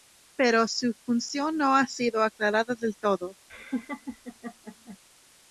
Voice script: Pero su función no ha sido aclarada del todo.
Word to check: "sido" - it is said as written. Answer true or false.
true